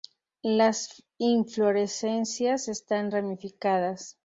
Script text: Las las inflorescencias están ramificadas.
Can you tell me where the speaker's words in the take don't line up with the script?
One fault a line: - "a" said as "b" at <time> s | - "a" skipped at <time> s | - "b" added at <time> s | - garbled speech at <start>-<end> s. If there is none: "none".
- "las" skipped at 1.0 s